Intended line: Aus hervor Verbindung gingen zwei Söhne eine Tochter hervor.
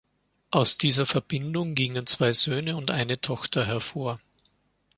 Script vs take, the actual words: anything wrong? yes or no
yes